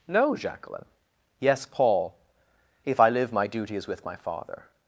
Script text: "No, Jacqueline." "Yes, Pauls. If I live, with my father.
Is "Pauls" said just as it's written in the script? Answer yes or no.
no